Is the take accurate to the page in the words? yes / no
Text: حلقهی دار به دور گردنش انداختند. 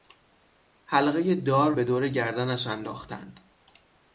yes